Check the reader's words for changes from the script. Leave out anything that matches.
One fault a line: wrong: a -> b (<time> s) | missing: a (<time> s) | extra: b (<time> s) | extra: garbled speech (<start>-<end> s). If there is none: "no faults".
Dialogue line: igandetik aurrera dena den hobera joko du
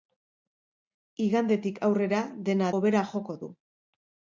missing: den (2.7 s)